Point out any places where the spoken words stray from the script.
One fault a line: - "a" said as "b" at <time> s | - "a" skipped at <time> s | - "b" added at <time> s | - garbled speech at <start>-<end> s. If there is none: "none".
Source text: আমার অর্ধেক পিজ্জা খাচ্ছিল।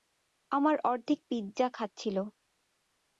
none